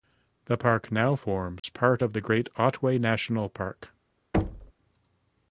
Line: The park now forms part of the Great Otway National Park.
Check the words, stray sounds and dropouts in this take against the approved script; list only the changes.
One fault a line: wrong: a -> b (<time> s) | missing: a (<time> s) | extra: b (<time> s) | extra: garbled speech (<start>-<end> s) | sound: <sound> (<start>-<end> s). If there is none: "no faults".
sound: dropout (1.6-1.6 s)
sound: thud (4.3-4.7 s)